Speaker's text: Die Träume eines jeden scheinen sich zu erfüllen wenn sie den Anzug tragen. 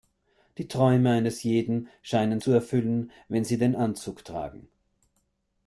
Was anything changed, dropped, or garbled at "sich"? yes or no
yes